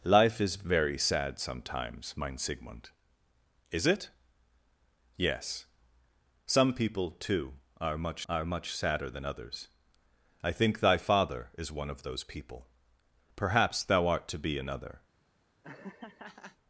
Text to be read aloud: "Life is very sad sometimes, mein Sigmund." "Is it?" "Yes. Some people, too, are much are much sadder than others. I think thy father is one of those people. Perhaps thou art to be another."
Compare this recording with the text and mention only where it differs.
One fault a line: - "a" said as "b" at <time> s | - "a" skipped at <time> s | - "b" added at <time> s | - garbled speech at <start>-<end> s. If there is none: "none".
none